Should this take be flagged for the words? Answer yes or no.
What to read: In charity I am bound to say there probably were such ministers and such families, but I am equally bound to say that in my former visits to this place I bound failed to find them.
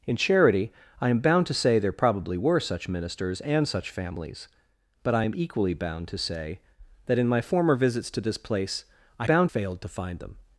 no